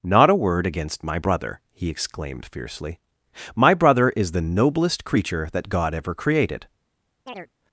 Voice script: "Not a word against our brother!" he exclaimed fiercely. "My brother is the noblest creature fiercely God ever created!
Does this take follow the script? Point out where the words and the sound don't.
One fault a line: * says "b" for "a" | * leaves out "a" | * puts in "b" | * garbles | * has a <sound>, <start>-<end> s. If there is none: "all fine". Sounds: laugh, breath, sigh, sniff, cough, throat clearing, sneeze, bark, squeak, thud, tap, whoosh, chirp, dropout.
* says "my" for "our"
* says "that" for "fiercely"
* has a chirp, 7.3-7.5 s